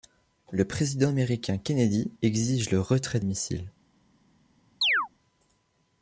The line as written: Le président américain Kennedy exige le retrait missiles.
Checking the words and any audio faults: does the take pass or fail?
fail